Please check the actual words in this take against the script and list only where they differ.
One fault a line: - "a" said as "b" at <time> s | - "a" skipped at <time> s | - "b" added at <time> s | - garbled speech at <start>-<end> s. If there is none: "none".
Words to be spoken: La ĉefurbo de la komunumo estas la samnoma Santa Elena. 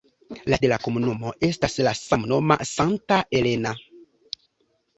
- "ĉefurbo" skipped at 0.6 s